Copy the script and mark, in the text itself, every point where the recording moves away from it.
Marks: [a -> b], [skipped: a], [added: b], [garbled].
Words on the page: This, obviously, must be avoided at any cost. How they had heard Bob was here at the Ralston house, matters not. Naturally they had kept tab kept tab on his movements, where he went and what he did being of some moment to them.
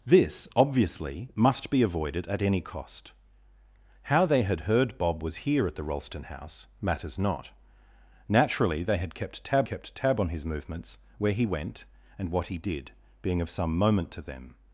This, obviously, must be avoided at any cost. How they had heard Bob was here at the Ralston house, matters not. Naturally they had kept tab kept tab on his movements, where he went and what he did being of some moment to them.